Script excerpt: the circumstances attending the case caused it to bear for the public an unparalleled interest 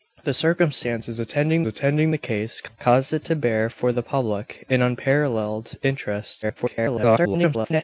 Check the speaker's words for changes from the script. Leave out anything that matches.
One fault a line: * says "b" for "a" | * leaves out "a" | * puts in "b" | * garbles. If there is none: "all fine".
* puts in "attending"
* garbles